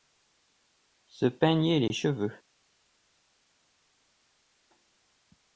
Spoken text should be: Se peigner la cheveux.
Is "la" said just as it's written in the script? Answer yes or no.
no